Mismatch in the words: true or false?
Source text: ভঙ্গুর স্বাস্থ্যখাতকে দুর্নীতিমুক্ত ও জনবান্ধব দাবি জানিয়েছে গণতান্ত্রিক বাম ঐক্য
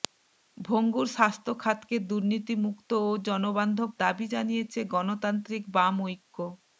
false